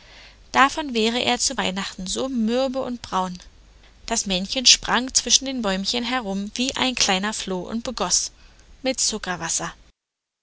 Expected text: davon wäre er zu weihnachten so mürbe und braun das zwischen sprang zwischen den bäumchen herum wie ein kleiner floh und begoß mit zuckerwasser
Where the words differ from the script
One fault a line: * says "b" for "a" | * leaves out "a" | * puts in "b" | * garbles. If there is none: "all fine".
* says "männchen" for "zwischen"